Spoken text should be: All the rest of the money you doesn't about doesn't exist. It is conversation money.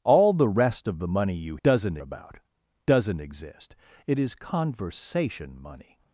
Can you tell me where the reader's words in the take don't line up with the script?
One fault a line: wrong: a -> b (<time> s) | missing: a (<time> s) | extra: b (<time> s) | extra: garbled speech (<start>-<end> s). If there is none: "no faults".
no faults